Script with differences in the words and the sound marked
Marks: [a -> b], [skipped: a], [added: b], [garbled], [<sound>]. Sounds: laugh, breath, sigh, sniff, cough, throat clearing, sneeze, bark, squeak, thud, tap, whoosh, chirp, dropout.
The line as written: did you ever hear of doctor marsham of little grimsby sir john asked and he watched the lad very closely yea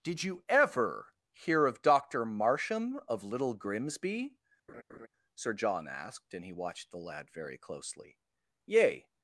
did you ever hear of doctor marsham of little grimsby [laugh] sir john asked and he watched the lad very closely yea